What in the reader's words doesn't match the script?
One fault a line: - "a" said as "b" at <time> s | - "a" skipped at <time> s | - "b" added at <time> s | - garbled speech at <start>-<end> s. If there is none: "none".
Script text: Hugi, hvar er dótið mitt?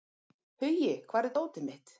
none